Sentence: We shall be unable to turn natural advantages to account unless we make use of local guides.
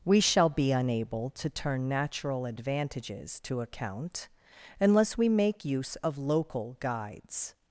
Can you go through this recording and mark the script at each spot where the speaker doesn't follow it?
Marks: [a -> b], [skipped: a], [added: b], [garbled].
We shall be unable to turn natural advantages to account unless we make use of local guides.